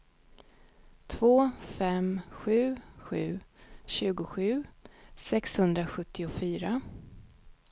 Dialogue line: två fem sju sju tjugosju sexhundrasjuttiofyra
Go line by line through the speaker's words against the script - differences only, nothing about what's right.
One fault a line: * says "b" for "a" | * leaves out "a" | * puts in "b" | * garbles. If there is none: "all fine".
all fine